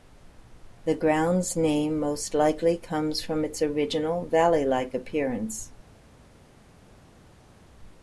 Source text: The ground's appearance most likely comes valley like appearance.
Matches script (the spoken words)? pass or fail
fail